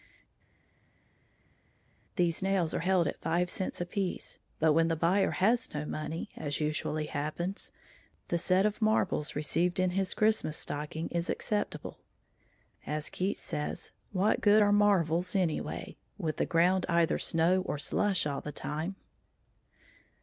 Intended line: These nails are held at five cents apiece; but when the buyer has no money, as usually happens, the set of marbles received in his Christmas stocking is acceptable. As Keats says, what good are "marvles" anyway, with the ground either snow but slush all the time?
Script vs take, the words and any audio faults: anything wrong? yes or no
yes